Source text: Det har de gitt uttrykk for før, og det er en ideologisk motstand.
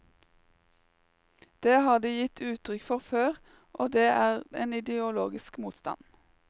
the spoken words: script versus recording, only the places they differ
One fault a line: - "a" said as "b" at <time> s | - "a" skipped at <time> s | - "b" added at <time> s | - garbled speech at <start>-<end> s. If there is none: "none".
none